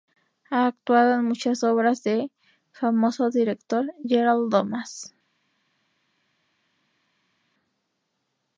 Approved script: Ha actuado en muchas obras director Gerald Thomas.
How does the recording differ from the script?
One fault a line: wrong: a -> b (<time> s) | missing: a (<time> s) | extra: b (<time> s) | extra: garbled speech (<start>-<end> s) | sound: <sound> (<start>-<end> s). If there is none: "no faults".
extra: de famoso (2.0 s)